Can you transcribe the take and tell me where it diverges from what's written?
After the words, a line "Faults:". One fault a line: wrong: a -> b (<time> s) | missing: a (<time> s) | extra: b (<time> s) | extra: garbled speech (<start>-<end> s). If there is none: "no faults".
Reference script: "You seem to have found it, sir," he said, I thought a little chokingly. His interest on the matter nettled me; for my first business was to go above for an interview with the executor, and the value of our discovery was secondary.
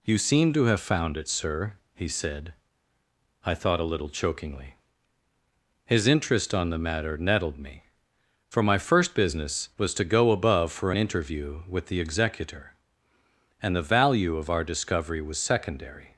"You seem to have found it, sir," he said, I thought a little chokingly. His interest on the matter nettled me; for my first business was to go above for an interview with the executor, and the value of our discovery was secondary.
Faults:
no faults